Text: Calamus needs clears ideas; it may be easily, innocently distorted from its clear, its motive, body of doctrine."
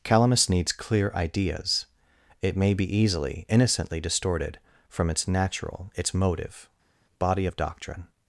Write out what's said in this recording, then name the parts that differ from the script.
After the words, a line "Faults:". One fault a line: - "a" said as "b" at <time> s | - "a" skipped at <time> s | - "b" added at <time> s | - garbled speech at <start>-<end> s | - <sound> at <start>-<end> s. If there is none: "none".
Calamus needs clear ideas; it may be easily, innocently distorted from its natural, its motive, body of doctrine."
Faults:
- "clears" said as "clear" at 0.7 s
- "clear" said as "natural" at 5.3 s